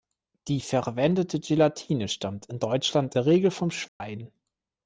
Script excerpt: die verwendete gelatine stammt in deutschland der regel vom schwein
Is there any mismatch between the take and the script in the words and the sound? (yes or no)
yes